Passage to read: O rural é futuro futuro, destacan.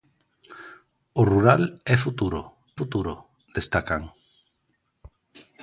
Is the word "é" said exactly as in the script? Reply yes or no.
yes